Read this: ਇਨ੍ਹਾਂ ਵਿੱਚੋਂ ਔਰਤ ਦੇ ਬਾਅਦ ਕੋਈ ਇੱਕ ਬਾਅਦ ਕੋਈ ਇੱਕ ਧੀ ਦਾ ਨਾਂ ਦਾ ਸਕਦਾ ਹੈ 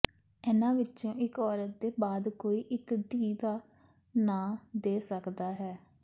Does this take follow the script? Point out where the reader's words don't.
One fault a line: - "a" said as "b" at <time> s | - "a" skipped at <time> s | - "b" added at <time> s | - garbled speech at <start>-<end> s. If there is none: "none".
- "ਇੱਕ" added at 1.1 s
- "ਬਾਅਦ ਕੋਈ ਇੱਕ" skipped at 2.9 s
- "ਦਾ" said as "ਦੇ" at 4.8 s